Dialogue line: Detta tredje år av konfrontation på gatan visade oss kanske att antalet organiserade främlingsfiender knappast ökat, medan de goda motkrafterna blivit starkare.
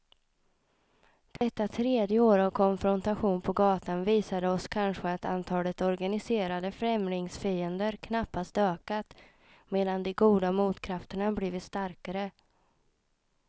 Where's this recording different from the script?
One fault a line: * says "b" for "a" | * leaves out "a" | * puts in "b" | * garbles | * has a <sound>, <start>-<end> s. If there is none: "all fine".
* has a dropout, 1.4-1.4 s